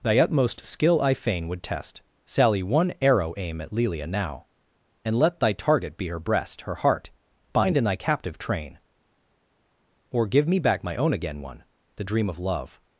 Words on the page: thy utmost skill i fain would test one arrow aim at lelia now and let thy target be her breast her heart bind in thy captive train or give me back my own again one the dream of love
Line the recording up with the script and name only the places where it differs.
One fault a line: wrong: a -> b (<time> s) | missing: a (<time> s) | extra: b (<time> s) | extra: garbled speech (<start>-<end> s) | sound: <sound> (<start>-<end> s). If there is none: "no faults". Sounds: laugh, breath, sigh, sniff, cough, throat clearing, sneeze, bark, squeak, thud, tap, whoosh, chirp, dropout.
extra: sally (2.2 s)